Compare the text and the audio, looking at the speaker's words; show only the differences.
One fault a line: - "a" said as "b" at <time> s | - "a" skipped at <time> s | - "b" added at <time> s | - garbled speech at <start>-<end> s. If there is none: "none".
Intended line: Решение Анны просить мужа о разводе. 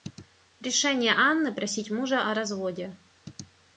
none